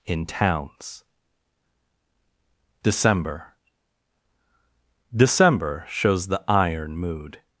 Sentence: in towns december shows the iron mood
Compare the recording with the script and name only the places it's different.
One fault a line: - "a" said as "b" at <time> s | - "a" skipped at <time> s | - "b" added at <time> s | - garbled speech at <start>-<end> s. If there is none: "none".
- "december" added at 5.2 s